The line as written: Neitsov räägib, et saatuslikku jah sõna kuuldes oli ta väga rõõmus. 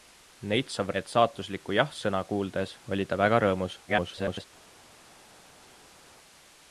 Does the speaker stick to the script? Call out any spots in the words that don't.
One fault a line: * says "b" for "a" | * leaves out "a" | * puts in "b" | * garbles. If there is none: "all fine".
* leaves out "räägib"
* garbles